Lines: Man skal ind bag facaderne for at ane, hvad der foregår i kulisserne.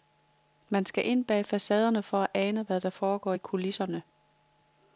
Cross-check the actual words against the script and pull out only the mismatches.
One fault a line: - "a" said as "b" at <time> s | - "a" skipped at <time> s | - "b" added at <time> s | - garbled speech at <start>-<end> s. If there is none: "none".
none